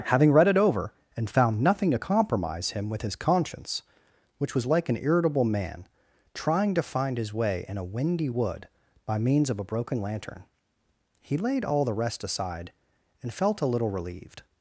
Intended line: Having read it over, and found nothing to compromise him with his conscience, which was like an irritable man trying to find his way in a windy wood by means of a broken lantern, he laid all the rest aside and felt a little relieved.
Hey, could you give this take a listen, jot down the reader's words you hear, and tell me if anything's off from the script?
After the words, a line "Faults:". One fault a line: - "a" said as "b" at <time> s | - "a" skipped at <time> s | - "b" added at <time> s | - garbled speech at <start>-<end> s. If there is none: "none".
Having read it over, and found nothing to compromise him with his conscience, which was like an irritable man trying to find his way in a windy wood by means of a broken lantern, he laid all the rest aside and felt a little relieved.
Faults:
none